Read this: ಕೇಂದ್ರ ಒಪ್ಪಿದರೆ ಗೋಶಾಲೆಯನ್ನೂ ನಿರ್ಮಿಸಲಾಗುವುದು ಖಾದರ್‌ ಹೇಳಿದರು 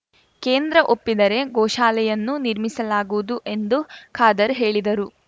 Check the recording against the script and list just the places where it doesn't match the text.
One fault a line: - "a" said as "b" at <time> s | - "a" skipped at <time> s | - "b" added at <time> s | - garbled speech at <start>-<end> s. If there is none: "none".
- "ಎಂದು" added at 3.5 s